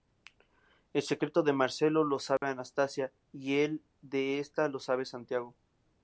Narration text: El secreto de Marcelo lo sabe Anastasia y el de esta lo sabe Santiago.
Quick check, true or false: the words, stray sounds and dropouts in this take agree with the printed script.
false